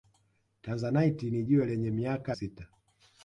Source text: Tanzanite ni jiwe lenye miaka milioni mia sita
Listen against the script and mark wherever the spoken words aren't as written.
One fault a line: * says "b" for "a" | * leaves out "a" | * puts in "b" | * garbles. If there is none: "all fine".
* leaves out "milioni mia"